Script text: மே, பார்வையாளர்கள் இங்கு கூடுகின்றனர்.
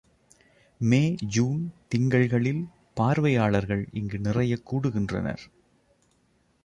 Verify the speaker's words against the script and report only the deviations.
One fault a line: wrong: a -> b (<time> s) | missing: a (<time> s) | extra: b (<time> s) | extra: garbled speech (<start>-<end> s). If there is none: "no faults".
extra: ஜூன் திங்கள்களில் (1.3 s)
extra: நிறையக் (4.2 s)